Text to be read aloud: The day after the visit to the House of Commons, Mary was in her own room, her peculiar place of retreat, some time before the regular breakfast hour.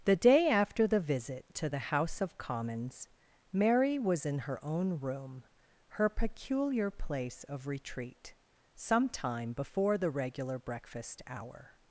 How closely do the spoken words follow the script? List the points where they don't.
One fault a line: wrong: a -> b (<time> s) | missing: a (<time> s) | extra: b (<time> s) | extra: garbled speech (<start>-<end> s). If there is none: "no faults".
no faults